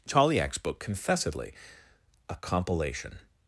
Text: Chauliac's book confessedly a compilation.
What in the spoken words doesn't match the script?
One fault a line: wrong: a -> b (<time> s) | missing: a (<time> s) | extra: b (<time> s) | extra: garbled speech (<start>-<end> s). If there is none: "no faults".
no faults